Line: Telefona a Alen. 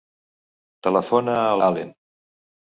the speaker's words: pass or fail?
pass